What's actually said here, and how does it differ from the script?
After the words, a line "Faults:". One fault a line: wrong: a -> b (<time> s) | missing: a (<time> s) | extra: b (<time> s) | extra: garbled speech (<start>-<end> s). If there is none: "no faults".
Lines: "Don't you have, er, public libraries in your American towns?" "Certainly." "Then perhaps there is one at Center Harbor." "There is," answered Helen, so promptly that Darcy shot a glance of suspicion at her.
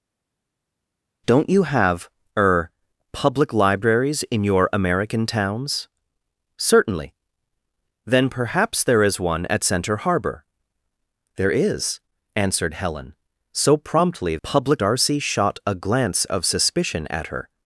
"Don't you have, er, public libraries in your American towns?" "Certainly." "Then perhaps there is one at Center Harbor." "There is," answered Helen, so promptly public Darcy shot a glance of suspicion at her.
Faults:
wrong: that -> public (14.4 s)